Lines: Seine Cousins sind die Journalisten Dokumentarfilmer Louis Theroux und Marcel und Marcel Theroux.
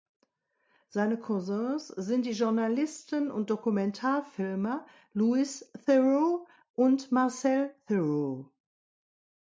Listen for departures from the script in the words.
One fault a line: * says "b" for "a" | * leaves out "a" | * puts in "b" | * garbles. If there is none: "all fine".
* puts in "und"
* leaves out "und Marcel"